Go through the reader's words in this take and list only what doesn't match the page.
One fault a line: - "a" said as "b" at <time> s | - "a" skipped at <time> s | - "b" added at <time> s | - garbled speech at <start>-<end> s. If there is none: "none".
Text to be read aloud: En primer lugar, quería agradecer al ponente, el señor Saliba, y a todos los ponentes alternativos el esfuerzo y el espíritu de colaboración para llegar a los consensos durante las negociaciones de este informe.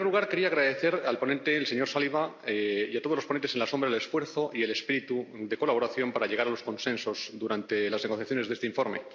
none